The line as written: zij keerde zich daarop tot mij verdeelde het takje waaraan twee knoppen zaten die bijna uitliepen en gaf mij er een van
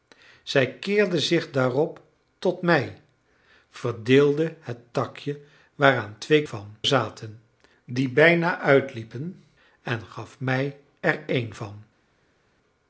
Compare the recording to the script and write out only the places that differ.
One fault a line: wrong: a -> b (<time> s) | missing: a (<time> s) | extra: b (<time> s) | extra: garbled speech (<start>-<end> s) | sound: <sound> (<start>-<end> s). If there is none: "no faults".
wrong: knoppen -> van (6.4 s)